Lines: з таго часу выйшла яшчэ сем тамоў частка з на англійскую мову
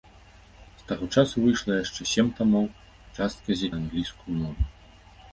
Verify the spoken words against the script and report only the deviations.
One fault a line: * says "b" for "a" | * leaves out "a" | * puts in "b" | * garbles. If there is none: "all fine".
all fine